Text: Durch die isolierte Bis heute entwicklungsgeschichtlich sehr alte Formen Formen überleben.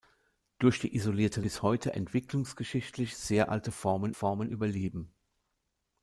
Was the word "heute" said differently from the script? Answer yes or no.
no